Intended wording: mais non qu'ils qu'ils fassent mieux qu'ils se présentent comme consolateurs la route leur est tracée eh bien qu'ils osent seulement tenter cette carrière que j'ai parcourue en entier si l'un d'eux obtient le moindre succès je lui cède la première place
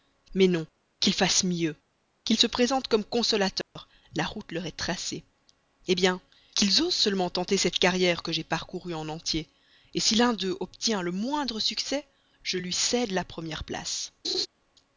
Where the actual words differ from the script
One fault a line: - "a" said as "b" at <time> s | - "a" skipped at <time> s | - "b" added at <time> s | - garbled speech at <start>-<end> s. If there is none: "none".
- "qu'ils" skipped at 1.1 s